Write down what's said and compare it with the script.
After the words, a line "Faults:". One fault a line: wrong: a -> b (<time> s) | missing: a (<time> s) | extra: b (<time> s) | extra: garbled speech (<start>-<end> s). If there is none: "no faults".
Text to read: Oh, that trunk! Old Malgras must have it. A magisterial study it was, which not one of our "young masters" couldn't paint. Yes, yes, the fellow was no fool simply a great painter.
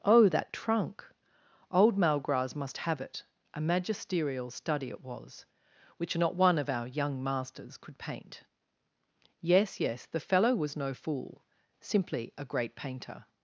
Oh, that trunk! Old Malgras must have it. A magisterial study it was, which not one of our "young masters" could paint. Yes, yes, the fellow was no fool simply a great painter.
Faults:
wrong: couldn't -> could (7.8 s)